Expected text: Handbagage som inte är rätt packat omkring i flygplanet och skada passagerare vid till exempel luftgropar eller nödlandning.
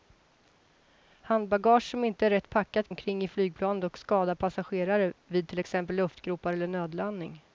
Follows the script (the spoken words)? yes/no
yes